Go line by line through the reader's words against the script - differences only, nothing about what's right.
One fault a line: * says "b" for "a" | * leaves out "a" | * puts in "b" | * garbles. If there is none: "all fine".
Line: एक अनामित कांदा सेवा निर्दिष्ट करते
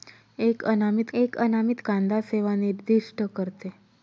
* puts in "एक अनामित"